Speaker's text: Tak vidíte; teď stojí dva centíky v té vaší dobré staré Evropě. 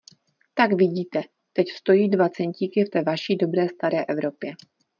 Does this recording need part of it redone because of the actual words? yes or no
no